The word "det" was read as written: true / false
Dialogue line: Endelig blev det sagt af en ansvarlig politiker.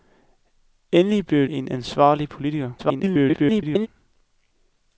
false